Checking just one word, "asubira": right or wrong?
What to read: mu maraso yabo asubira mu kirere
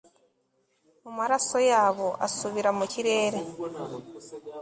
right